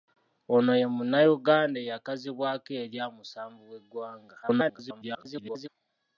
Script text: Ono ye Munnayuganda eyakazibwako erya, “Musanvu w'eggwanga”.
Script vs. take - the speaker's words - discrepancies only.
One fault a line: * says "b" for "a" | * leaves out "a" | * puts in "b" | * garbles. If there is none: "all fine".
* garbles